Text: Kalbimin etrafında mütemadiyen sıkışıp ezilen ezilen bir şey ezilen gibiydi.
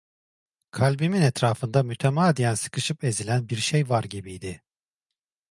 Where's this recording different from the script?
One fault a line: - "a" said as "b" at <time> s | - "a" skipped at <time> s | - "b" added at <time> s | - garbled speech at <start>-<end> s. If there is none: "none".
- "ezilen" skipped at 3.5 s
- "ezilen" said as "var" at 3.9 s